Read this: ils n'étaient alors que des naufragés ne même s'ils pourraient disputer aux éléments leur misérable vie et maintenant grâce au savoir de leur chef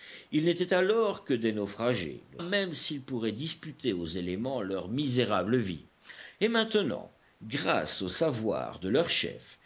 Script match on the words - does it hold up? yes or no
yes